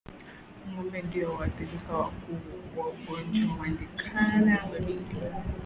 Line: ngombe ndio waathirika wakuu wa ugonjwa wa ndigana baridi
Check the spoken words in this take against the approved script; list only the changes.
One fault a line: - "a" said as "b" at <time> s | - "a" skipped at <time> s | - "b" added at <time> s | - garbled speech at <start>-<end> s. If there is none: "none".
none